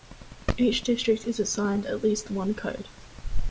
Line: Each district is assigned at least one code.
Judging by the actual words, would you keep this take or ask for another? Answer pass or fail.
pass